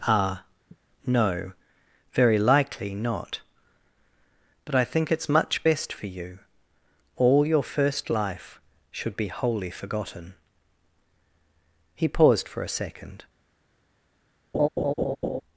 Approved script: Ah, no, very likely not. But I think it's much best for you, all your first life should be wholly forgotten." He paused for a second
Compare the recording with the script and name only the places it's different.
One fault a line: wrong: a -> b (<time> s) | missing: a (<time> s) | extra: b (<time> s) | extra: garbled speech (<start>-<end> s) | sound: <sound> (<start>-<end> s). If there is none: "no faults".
sound: sigh (0.7-0.8 s)
sound: laugh (14.5-15.4 s)